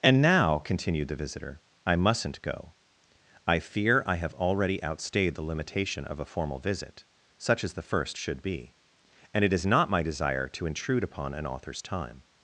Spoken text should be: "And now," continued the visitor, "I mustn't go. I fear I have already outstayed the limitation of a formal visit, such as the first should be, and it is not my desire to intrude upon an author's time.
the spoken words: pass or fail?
pass